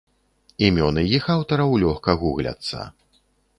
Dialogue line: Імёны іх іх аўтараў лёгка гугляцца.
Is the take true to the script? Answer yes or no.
no